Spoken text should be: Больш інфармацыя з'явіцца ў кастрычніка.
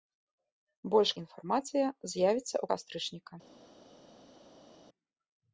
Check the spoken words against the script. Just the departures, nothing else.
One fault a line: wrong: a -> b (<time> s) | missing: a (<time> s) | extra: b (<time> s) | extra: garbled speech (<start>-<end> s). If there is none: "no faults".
no faults